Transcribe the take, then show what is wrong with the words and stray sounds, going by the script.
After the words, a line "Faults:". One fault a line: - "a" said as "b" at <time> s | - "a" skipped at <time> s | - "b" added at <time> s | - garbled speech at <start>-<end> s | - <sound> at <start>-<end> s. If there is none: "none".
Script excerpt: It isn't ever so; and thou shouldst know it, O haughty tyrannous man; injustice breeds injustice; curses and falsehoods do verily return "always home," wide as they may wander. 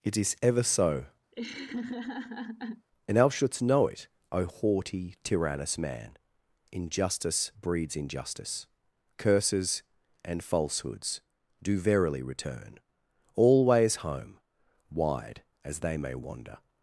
It is ever so; and thou shouldst know it, O haughty tyrannous man; injustice breeds injustice; curses and falsehoods do verily return "always home," wide as they may wander.
Faults:
- "isn't" said as "is" at 0.2 s
- laugh at 1.3-2.9 s